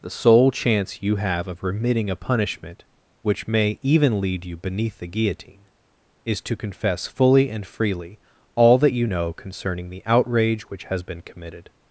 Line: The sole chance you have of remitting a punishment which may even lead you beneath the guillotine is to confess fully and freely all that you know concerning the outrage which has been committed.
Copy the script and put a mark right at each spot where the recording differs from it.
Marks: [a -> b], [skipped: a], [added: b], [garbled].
The sole chance you have of remitting a punishment which may even lead you beneath the guillotine is to confess fully and freely all that you know concerning the outrage which has been committed.